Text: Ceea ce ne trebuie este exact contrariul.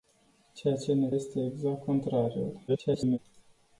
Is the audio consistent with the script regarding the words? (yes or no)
no